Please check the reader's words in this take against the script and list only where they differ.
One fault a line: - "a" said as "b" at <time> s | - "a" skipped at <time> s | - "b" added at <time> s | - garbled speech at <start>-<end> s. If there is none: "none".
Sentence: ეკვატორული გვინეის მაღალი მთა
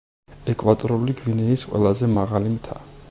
- "ყველაზე" added at 1.7 s